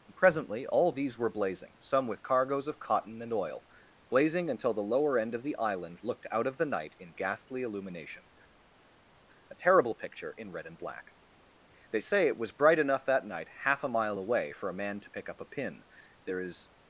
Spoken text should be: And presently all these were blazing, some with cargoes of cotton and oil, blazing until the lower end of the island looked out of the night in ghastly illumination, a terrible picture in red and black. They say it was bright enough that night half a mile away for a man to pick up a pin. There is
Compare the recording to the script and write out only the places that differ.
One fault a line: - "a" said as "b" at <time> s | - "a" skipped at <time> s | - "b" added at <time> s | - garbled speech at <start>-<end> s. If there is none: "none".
none